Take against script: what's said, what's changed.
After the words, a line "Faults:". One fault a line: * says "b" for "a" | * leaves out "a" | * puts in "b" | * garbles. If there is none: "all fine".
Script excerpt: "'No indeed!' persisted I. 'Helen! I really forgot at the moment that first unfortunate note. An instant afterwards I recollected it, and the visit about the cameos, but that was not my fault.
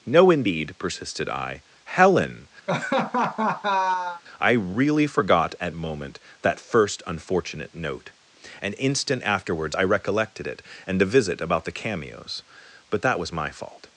"'No indeed!' persisted I. 'Helen! I really forgot at moment that first unfortunate note. An instant afterwards I recollected it, and the visit about the cameos, but that was my fault.
Faults:
* leaves out "the"
* leaves out "not"